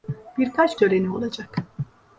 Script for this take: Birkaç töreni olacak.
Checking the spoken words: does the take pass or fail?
pass